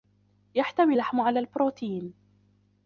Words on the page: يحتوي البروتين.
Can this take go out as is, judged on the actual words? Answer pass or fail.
fail